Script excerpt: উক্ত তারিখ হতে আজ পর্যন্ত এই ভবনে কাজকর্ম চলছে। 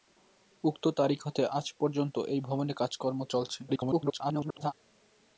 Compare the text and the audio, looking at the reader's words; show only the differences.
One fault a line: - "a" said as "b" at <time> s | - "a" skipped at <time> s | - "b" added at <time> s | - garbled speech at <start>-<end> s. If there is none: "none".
- garbled speech at 3.7-4.7 s